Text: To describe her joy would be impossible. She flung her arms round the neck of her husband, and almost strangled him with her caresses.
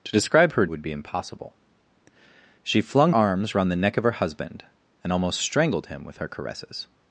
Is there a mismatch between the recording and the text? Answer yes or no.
yes